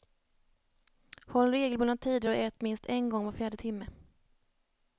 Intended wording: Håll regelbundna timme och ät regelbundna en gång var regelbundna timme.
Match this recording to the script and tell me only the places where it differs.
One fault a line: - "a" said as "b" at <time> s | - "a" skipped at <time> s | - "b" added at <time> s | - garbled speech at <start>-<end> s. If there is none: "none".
- "timme" said as "tider" at 2.0 s
- "regelbundna" said as "minst" at 2.6 s
- "regelbundna" said as "fjärde" at 3.3 s